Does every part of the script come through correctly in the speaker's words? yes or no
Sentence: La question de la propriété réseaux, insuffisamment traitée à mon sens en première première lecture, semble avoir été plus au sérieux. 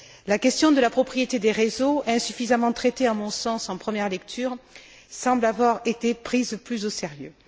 no